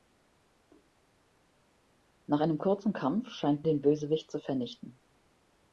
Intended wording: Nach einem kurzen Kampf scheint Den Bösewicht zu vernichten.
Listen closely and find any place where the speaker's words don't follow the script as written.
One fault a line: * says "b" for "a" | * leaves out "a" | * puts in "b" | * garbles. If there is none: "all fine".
all fine